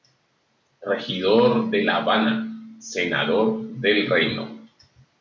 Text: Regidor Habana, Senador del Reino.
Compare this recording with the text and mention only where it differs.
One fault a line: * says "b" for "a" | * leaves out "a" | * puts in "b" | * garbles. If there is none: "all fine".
* puts in "de La"